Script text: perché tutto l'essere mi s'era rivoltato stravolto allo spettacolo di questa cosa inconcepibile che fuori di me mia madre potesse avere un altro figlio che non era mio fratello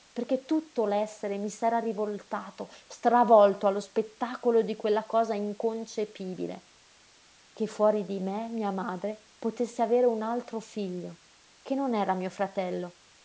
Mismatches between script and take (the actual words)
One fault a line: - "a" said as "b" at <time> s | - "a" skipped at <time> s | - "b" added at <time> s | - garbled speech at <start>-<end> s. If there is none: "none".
- "questa" said as "quella" at 4.8 s